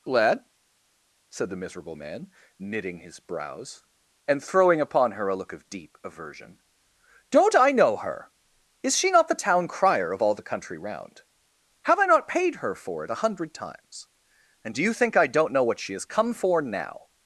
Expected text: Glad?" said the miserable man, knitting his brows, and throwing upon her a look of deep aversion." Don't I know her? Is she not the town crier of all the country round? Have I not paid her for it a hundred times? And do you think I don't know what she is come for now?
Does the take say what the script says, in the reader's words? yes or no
no